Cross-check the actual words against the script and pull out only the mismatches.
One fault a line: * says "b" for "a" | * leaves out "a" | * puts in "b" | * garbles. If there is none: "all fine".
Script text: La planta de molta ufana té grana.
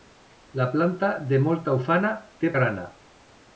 all fine